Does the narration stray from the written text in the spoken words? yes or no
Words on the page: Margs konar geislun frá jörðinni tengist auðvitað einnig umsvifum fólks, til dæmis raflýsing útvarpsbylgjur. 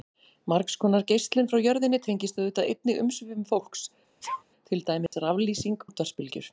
no